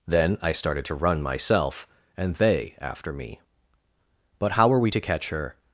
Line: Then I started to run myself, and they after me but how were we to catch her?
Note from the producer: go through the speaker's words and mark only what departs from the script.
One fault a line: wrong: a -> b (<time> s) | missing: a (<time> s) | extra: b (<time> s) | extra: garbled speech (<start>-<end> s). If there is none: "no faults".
no faults